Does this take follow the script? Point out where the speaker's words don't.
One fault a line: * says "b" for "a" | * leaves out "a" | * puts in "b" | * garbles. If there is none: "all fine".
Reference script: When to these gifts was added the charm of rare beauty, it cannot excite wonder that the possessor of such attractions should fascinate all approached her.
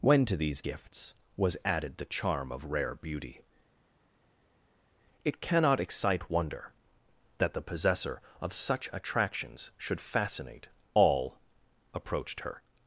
all fine